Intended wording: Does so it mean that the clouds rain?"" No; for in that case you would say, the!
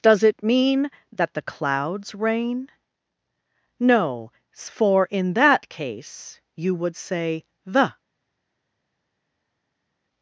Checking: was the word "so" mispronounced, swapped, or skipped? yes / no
yes